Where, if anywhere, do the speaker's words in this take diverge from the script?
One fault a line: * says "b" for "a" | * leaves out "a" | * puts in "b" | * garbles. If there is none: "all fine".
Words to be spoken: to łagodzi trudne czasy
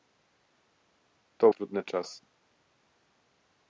* leaves out "łagodzi"